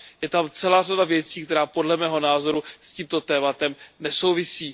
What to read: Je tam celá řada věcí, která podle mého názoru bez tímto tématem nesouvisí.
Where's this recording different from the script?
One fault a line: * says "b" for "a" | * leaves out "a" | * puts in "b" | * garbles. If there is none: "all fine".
* says "s" for "bez"